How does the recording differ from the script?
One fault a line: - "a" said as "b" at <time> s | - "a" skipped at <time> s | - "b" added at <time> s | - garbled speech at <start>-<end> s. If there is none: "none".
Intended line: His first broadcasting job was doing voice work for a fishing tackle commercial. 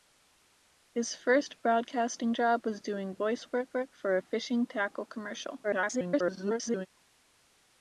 - "work" added at 3.7 s
- garbled speech at 5.6-6.9 s